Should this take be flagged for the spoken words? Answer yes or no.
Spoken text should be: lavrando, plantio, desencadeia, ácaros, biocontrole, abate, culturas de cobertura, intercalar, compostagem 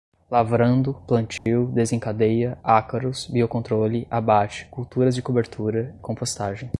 yes